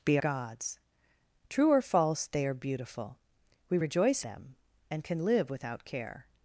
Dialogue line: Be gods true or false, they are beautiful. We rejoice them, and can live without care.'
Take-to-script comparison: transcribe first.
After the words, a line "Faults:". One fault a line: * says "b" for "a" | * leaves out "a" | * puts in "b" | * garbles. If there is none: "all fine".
Be gods true or false, they are beautiful. We rejoice them, and can live without care.'
Faults:
all fine